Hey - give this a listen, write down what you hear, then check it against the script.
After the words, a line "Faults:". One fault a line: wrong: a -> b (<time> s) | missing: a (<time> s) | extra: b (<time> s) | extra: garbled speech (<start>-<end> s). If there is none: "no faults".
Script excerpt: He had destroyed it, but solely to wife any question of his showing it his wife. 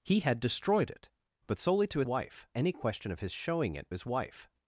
He had destroyed it, but solely to wife any question of his showing it his wife.
Faults:
no faults